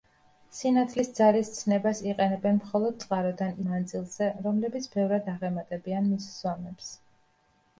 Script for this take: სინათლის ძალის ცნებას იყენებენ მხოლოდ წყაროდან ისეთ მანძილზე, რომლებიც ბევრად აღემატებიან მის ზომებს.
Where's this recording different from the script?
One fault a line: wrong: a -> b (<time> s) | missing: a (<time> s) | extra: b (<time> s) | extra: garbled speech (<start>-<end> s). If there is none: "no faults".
missing: ისეთ (3.6 s)